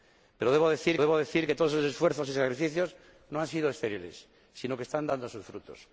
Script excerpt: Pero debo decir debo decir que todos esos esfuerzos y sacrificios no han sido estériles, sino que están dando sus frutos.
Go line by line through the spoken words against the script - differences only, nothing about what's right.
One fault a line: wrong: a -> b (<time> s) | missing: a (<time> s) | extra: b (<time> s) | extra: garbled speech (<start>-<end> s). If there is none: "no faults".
no faults